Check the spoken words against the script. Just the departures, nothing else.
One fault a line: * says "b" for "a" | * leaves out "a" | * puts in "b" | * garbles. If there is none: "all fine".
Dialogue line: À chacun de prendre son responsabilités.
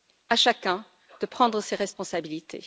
* says "ses" for "son"